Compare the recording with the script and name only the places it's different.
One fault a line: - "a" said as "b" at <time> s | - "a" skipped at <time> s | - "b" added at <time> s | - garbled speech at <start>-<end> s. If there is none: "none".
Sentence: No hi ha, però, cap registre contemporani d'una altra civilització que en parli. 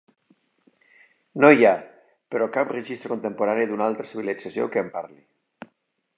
none